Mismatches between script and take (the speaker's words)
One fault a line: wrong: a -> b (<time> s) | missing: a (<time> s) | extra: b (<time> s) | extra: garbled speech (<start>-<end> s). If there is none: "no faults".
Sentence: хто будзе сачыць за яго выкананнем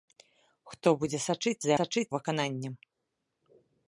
wrong: яго -> сачыць (1.8 s)